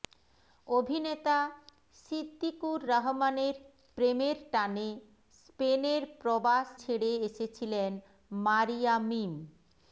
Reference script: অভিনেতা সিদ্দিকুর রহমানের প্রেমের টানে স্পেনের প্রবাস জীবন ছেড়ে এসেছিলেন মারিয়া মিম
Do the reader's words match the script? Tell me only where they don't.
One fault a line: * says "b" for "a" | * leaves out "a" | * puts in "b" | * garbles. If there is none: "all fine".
* leaves out "জীবন"